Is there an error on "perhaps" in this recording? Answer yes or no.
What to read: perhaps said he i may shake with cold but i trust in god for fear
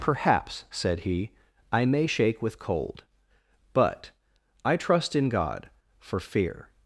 no